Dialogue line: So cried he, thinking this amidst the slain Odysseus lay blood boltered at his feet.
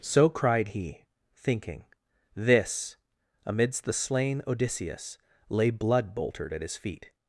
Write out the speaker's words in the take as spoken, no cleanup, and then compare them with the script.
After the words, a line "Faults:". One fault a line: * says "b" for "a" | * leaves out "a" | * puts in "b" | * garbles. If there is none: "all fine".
So cried he, thinking this amidst the slain Odysseus lay blood boltered at his feet.
Faults:
all fine